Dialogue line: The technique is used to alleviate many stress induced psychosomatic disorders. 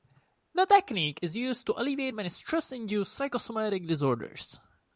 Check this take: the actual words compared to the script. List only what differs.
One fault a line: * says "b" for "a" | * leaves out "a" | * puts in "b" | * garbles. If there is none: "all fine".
all fine